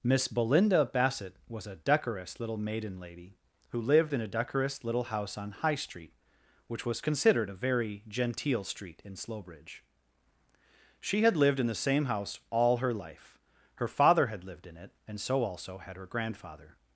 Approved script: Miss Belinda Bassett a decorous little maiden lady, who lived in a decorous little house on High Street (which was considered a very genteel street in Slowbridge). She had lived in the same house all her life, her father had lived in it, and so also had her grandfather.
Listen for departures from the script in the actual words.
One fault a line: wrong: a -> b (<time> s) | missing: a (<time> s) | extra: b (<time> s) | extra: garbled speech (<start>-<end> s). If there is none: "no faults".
extra: was (1.5 s)